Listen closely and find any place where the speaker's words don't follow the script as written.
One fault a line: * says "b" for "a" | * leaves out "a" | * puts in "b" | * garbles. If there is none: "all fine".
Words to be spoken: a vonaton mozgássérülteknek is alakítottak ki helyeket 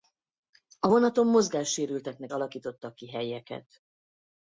* leaves out "is"